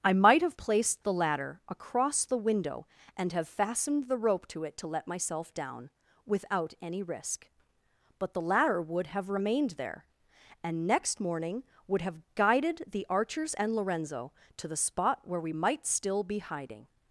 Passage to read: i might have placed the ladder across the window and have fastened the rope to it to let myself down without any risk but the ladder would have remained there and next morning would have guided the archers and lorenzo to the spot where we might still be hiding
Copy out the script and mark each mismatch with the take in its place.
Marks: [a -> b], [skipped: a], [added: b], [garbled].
i might have placed the ladder across the window and have fastened the rope to it to let myself down without any risk but the ladder would have remained there and next morning would have guided the archers and lorenzo to the spot where we might still be hiding